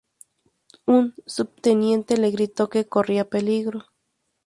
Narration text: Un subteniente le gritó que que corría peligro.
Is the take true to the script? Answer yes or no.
no